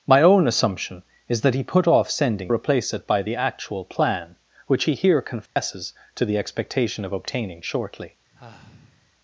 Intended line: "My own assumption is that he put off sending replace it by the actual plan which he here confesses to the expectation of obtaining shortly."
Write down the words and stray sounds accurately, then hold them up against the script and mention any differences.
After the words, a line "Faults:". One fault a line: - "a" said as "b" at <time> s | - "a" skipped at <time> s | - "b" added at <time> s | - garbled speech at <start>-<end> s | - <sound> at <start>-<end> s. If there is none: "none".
"My own assumption is that he put off sending replace it by the actual plan which he here confesses to the expectation of obtaining shortly."
Faults:
- dropout at 5.5-5.6 s
- sigh at 8.3-9.1 s